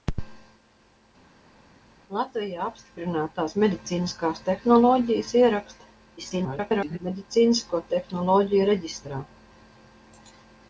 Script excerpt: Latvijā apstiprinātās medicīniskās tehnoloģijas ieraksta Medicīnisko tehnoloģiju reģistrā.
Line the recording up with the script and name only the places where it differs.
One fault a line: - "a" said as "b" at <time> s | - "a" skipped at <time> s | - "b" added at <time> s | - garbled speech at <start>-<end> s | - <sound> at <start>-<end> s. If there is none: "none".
- garbled speech at 6.2-7.0 s